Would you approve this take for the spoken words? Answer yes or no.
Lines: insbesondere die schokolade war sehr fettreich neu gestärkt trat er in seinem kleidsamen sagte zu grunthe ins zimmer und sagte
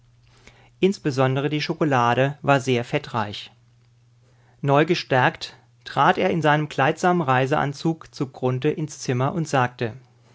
no